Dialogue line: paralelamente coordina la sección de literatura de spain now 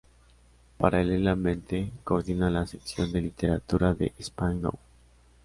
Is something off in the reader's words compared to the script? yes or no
no